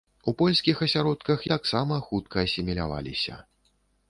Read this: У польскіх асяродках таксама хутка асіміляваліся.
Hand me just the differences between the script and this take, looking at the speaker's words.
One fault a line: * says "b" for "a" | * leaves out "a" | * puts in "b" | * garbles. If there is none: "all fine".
all fine